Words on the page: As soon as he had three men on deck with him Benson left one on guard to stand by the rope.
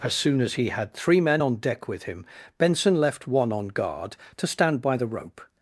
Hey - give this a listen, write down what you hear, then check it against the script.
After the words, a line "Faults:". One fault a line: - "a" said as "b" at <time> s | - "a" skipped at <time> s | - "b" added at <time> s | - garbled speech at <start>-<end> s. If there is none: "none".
As soon as he had three men on deck with him Benson left one on guard to stand by the rope.
Faults:
none